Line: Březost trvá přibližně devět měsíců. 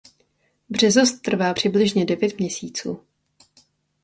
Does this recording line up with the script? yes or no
yes